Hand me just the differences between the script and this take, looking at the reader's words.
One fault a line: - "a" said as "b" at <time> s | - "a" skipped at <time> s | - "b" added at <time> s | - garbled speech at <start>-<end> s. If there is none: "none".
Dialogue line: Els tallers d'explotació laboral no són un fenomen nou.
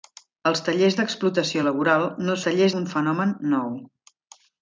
- "són" said as "tallers" at 2.5 s